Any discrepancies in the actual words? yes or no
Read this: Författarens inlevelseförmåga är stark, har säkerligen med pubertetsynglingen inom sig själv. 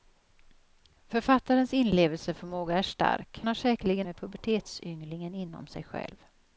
no